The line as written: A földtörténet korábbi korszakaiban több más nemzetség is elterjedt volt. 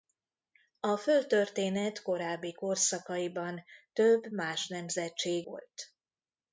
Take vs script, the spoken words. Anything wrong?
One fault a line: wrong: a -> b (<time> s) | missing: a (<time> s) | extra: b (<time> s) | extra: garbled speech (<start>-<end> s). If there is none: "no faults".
missing: is elterjedt (5.5 s)